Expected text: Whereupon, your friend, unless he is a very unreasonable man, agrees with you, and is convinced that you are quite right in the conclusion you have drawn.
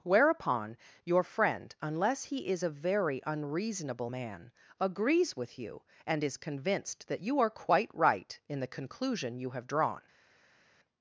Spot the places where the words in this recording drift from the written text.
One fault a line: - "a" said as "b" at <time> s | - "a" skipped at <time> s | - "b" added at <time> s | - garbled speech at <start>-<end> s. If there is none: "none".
none